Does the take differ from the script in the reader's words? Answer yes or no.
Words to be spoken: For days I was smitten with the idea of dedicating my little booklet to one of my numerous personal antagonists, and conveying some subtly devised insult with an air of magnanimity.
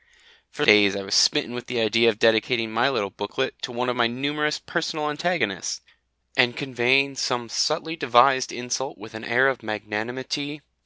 no